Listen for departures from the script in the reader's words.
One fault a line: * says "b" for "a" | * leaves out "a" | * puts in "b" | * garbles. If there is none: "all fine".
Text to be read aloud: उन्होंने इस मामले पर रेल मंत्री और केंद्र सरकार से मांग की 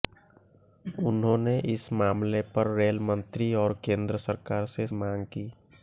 all fine